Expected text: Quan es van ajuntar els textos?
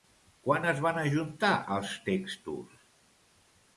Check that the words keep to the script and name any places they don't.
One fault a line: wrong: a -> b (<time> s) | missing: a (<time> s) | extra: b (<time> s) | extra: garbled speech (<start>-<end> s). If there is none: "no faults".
no faults